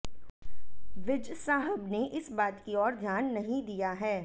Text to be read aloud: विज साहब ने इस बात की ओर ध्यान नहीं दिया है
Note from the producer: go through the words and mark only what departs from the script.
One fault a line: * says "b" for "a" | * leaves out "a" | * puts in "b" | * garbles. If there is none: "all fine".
all fine